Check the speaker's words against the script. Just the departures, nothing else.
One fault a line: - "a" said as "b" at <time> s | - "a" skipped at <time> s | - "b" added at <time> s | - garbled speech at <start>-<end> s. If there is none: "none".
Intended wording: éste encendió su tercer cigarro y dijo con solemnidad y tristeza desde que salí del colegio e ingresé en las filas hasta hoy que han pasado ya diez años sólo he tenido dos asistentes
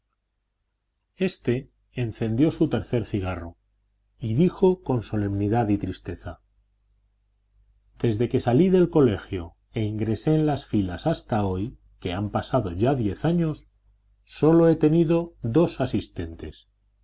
none